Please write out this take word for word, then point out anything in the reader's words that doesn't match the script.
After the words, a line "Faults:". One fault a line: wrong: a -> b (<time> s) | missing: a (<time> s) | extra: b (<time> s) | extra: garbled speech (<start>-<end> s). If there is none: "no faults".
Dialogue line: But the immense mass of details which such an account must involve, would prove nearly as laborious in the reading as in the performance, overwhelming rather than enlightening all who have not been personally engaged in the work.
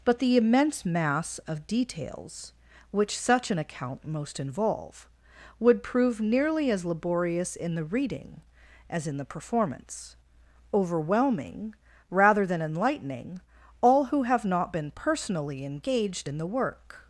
But the immense mass of details which such an account most involve, would prove nearly as laborious in the reading as in the performance, overwhelming rather than enlightening all who have not been personally engaged in the work.
Faults:
wrong: must -> most (4.1 s)